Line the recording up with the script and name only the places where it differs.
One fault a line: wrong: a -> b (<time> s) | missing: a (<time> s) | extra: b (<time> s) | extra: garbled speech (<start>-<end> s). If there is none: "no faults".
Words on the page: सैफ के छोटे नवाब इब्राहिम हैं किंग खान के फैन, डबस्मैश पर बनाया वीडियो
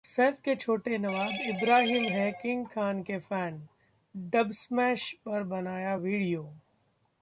no faults